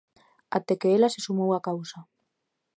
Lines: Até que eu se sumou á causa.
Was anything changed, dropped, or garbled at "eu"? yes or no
yes